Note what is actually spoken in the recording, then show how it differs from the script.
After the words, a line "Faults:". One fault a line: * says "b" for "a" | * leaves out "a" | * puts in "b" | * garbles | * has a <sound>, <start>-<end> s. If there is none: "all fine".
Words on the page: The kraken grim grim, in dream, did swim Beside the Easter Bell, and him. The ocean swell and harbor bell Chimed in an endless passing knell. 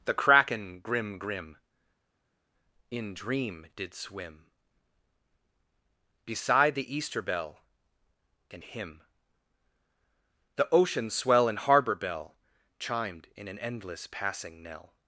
The kraken grim grim, in dream, did swim Beside the Easter Bell, and him. The ocean swell and harbor bell Chimed in an endless passing knell.
Faults:
all fine